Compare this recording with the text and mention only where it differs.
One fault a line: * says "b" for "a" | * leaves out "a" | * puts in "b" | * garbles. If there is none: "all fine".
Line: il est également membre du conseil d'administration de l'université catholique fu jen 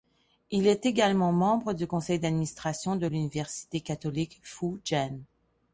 all fine